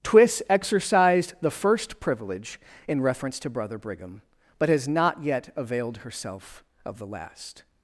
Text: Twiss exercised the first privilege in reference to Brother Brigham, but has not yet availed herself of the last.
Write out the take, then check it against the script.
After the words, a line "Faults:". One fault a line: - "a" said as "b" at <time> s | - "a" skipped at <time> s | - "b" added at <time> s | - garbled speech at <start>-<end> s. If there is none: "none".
Twiss exercised the first privilege in reference to Brother Brigham, but has not yet availed herself of the last.
Faults:
none